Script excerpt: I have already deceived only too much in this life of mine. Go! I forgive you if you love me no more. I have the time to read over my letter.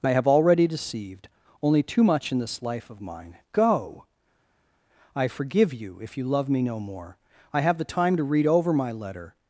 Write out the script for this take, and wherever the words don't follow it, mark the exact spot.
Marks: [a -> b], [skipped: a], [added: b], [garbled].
I have already deceived only too much in this life of mine. Go! I forgive you if you love me no more. I have the time to read over my letter.